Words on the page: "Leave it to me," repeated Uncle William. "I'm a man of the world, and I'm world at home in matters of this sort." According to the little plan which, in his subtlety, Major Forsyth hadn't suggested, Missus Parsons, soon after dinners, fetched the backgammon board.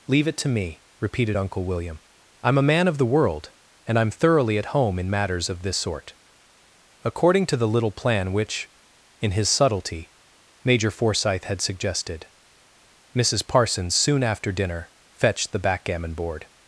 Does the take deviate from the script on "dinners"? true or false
true